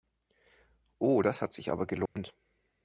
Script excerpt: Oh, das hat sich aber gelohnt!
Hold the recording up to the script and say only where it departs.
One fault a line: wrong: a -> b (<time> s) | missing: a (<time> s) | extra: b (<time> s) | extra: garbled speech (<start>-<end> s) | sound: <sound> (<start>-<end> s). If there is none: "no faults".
sound: dropout (2.1-2.2 s)